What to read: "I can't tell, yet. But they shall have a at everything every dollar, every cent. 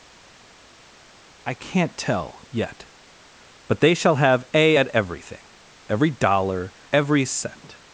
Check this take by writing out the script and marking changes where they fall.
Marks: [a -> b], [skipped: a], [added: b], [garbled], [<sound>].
"I can't tell, yet. But they shall have a at everything every dollar, every cent.